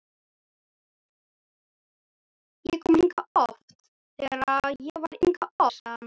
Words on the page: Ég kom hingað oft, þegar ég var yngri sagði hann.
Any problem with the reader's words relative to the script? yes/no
yes